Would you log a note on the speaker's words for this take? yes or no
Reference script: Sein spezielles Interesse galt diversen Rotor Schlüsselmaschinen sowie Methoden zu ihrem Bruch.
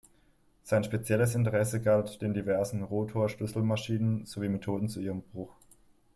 yes